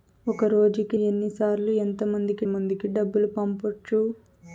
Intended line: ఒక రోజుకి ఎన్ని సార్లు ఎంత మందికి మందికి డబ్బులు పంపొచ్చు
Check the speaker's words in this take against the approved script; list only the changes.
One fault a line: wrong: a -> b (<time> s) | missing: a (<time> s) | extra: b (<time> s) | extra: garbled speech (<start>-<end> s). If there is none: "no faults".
no faults